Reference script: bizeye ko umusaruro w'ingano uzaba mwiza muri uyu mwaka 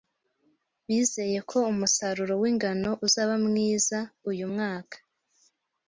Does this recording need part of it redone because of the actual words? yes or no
yes